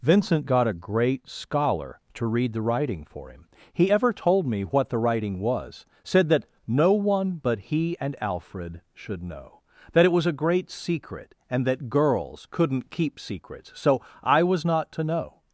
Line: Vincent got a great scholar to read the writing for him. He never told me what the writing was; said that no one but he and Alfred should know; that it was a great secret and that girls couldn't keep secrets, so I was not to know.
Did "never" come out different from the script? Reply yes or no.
yes